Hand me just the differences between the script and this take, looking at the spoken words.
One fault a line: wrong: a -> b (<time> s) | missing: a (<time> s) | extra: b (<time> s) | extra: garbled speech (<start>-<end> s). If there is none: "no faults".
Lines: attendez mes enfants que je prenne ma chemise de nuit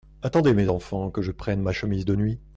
no faults